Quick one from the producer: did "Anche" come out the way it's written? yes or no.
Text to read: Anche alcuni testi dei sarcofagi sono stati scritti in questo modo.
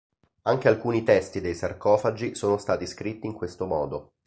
yes